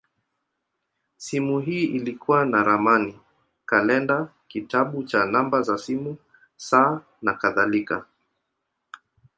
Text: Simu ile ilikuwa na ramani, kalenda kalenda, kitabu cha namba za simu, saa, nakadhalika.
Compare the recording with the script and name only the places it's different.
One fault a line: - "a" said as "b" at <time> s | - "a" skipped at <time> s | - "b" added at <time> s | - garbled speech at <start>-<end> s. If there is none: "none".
- "ile" said as "hii" at 1.6 s
- "kalenda" skipped at 4.3 s